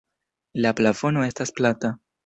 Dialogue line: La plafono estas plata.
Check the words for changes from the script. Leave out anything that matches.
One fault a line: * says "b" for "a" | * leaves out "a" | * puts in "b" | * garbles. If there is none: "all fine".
all fine